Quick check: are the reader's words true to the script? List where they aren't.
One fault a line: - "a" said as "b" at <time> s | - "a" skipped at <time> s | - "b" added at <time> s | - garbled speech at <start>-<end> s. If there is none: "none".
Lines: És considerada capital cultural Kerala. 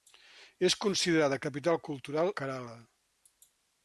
none